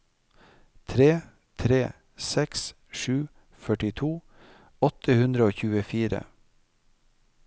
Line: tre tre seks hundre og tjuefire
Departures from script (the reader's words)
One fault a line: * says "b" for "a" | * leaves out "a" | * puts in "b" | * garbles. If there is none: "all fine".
* puts in "sju førtito åtte"